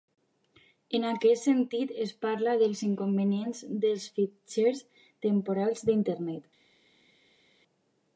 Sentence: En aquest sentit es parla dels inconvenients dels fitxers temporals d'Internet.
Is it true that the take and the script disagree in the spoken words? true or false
false